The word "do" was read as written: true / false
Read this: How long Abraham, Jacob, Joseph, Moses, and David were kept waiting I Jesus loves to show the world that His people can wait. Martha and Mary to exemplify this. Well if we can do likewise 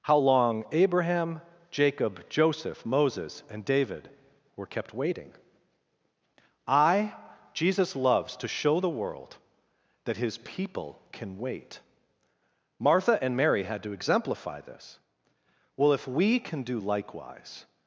true